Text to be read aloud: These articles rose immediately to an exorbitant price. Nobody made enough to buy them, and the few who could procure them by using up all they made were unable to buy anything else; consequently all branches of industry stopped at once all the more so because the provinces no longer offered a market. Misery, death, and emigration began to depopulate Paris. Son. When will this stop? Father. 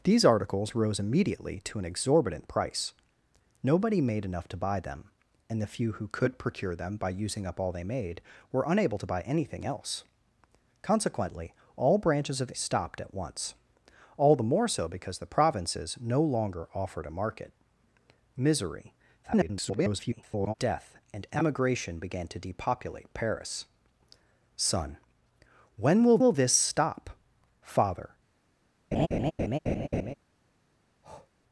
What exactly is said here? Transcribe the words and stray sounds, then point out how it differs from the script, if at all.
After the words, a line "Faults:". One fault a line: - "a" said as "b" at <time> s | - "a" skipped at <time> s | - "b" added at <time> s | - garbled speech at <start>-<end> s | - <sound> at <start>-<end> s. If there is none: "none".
These articles rose immediately to an exorbitant price. Nobody made enough to buy them, and the few who could procure them by using up all they made were unable to buy anything else; consequently all branches of stopped at once all the more so because the provinces no longer offered a market. Misery, [garbled] death, and emigration began to depopulate Paris. Son. When will will this stop? Father.
Faults:
- "industry" skipped at 12.5 s
- garbled speech at 19.2-20.5 s
- "will" added at 26.2 s
- laugh at 28.9-30.1 s
- breath at 31.0-31.3 s